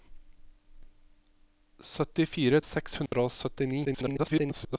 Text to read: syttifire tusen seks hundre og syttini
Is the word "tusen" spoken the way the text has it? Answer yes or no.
no